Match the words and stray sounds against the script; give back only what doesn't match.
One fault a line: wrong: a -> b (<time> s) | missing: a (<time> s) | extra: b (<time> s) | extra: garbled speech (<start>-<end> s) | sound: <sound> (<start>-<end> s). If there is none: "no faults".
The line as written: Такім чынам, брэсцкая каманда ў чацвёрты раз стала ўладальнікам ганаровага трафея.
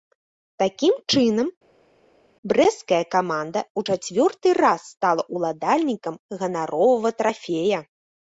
no faults